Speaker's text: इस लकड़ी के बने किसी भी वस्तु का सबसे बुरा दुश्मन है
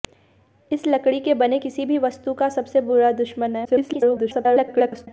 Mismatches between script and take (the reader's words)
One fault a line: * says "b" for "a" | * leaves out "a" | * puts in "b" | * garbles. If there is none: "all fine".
* garbles